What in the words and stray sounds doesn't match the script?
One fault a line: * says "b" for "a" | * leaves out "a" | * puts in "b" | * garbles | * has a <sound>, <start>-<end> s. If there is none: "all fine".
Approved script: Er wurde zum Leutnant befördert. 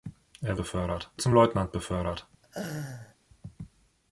* says "befördert" for "wurde"
* has a laugh, 2.4-3.2 s